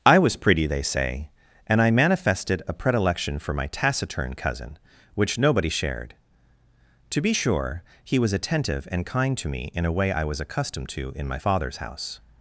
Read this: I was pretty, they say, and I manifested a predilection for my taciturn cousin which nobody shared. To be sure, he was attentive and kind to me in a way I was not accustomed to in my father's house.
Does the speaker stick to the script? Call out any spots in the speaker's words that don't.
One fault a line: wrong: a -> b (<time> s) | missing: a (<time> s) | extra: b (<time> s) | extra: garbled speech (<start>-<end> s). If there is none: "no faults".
missing: not (10.4 s)